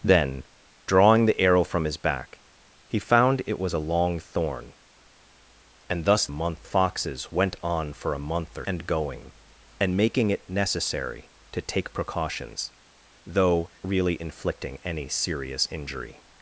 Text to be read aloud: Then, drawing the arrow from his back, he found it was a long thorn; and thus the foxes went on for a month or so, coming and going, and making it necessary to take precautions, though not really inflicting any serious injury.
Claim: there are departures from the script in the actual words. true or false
true